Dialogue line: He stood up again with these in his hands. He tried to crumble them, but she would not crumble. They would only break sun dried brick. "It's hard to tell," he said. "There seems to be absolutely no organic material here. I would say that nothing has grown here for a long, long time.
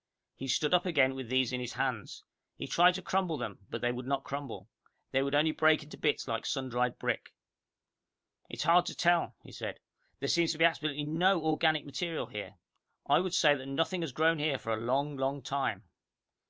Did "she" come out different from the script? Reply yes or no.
yes